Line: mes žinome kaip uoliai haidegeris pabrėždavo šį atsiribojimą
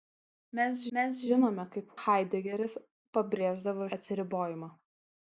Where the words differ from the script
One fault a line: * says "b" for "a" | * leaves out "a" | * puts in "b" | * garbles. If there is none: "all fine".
* puts in "mes"
* leaves out "uoliai"
* leaves out "šį"